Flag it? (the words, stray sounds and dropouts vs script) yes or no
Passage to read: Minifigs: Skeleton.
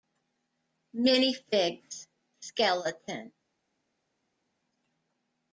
no